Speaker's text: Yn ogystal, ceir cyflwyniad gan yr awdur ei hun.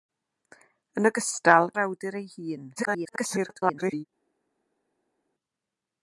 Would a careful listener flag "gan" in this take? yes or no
yes